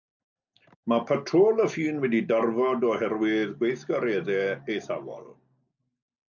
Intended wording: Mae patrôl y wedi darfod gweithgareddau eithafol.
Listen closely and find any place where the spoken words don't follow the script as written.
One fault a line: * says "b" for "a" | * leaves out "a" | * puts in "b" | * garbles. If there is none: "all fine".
* puts in "ffin"
* puts in "oherwydd"